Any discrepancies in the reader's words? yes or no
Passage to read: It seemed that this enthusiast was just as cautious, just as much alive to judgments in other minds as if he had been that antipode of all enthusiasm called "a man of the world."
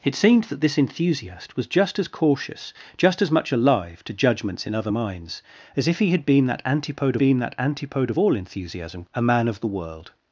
yes